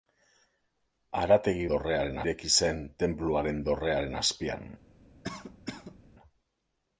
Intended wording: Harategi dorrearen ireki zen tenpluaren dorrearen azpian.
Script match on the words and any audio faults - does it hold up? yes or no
no